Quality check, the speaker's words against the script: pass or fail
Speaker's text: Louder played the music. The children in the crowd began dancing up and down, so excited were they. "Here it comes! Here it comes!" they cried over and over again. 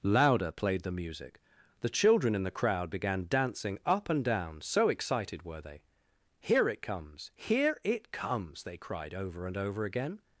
pass